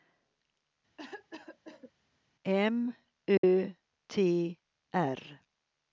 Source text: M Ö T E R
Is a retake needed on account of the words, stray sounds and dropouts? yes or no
yes